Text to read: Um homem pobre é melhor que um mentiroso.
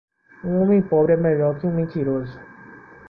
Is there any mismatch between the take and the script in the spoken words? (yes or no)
no